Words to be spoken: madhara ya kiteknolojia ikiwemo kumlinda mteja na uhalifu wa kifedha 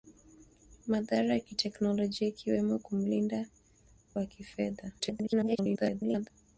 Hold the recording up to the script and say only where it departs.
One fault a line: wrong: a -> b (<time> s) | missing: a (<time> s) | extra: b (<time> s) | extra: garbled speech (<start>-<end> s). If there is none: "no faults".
missing: mteja na uhalifu (3.5 s)
extra: garbled speech (5.0-6.3 s)